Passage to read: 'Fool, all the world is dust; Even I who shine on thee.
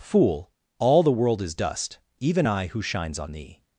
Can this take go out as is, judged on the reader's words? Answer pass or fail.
fail